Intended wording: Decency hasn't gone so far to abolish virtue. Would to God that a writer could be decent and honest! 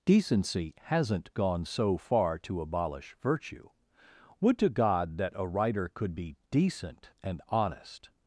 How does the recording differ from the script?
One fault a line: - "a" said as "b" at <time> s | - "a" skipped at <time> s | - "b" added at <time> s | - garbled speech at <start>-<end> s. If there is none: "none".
none